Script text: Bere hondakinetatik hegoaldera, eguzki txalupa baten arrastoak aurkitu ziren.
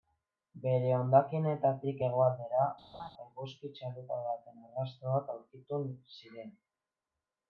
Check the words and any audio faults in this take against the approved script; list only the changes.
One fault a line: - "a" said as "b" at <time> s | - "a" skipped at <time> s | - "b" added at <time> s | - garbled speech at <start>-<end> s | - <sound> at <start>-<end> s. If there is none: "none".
- laugh at 2.9-3.1 s